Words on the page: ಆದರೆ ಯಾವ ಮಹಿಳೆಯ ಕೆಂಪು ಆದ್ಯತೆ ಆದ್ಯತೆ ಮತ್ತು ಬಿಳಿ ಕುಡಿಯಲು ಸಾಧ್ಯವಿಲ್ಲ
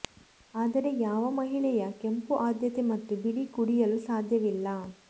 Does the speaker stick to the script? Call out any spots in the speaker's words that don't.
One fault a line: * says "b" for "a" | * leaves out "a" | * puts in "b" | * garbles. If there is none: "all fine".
* leaves out "ಆದ್ಯತೆ"